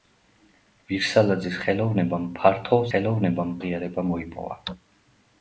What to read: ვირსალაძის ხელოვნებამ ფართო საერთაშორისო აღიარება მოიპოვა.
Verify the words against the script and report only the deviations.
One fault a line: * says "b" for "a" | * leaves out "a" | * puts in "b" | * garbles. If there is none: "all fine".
* says "ხელოვნებამ" for "საერთაშორისო"